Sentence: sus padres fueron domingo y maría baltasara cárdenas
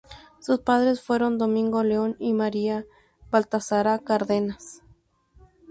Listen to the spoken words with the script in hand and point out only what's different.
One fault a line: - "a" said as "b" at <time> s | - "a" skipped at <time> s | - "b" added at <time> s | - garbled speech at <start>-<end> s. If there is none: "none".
- "león" added at 1.8 s